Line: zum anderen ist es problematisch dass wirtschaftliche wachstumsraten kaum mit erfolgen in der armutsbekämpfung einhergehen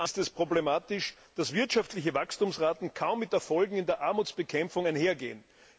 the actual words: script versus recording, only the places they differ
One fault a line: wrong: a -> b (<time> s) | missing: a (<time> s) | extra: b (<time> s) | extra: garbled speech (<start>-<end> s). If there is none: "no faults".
missing: anderen (0.1 s)